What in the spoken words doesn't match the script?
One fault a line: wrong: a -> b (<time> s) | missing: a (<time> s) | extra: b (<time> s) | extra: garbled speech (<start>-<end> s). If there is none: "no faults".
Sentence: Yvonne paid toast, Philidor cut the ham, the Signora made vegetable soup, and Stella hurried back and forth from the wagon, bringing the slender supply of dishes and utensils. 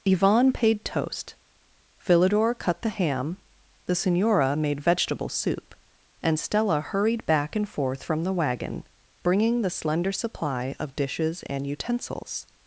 no faults